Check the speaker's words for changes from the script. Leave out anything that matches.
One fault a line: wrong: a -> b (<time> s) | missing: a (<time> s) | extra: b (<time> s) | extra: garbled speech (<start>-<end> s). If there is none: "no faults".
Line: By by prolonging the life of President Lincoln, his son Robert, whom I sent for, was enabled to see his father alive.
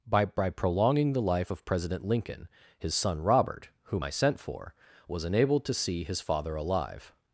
no faults